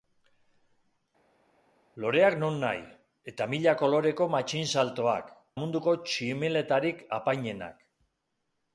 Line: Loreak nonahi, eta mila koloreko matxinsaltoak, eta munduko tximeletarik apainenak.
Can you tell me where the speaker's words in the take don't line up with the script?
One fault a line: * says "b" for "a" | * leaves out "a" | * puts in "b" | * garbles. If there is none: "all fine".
* leaves out "eta"